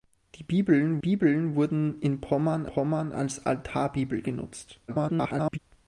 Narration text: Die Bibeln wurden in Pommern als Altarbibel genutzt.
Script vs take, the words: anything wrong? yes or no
yes